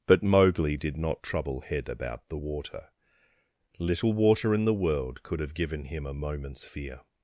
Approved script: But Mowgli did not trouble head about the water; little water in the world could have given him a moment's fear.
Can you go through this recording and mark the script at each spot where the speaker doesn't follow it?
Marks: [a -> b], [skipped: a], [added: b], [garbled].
But Mowgli did not trouble head about the water; little water in the world could have given him a moment's fear.